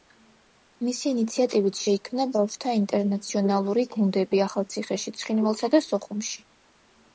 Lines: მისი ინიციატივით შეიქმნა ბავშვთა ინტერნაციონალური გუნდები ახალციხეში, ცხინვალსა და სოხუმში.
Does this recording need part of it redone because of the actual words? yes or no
no